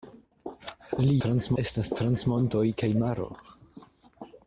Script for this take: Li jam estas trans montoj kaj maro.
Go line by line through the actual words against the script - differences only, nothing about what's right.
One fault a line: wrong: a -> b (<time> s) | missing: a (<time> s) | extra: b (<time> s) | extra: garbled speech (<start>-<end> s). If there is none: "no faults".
wrong: jam -> trans (1.2 s)